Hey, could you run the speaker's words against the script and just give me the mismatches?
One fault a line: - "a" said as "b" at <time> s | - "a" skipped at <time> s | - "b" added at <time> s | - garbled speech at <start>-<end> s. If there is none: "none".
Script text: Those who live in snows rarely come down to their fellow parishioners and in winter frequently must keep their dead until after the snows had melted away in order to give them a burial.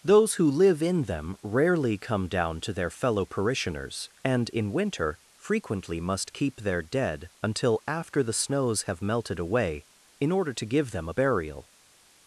- "snows" said as "them" at 1.0 s
- "had" said as "have" at 8.8 s